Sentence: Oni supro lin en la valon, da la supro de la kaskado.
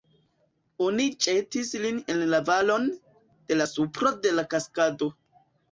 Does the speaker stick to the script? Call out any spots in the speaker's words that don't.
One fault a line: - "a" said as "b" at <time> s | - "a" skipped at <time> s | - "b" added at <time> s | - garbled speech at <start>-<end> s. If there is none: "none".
- "supro" said as "ĵetis" at 1.2 s
- "da" said as "de" at 3.5 s